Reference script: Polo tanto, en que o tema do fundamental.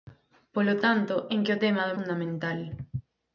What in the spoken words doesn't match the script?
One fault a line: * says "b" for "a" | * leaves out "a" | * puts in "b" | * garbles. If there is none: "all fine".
all fine